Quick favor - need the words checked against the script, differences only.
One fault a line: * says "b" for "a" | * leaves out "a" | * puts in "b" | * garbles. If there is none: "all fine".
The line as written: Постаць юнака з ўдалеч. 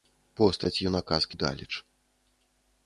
all fine